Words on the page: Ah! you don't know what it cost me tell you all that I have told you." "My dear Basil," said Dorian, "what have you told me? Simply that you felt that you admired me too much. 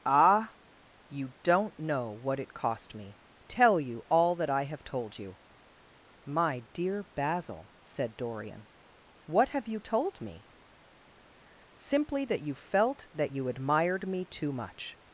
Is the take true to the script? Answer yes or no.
yes